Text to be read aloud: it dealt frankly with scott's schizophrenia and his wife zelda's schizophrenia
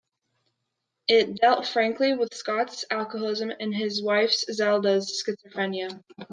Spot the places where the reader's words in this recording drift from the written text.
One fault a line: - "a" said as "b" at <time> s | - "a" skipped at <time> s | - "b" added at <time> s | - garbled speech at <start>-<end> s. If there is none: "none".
- "schizophrenia" said as "alcoholism" at 2.9 s